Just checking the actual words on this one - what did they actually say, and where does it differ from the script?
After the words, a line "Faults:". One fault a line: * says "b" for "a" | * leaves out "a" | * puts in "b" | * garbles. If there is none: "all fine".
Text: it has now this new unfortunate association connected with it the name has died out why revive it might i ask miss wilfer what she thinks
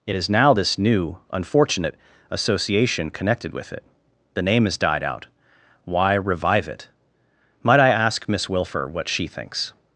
it is now this new unfortunate association connected with it the name has died out why revive it might i ask miss wilfer what she thinks
Faults:
* says "is" for "has"